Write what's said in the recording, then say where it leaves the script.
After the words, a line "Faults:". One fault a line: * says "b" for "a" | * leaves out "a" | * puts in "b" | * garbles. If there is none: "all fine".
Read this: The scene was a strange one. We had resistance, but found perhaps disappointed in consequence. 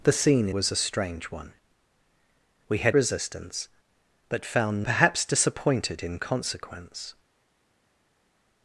The scene was a strange one. We had resistance, but found perhaps disappointed in consequence.
Faults:
all fine